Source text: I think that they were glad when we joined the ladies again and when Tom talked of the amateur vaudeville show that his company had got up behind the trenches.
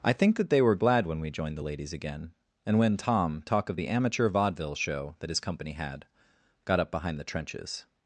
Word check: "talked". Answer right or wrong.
wrong